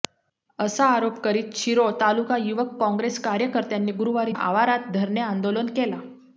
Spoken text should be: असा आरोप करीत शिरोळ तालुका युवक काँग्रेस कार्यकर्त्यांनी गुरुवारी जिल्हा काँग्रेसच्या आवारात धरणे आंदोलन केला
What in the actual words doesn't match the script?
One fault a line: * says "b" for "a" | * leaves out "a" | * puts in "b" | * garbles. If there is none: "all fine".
* leaves out "जिल्हा काँग्रेसच्या"